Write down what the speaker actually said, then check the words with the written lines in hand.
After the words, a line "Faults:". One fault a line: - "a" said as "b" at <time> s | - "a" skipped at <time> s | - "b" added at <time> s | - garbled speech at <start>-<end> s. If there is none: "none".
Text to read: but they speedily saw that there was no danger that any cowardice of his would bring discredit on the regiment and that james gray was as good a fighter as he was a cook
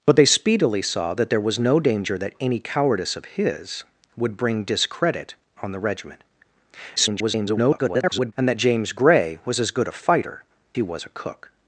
but they speedily saw that there was no danger that any cowardice of his would bring discredit on the regiment [garbled] and that james gray was as good a fighter he was a cook
Faults:
- garbled speech at 7.0-8.3 s
- "as" skipped at 10.4 s